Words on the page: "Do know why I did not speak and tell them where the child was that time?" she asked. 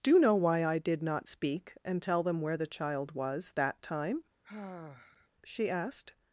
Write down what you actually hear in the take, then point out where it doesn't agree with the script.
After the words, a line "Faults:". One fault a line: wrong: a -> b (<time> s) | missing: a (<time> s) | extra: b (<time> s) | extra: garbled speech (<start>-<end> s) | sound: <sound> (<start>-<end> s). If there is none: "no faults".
"Do know why I did not speak and tell them where the child was that time?" she asked.
Faults:
sound: sigh (4.4-5.3 s)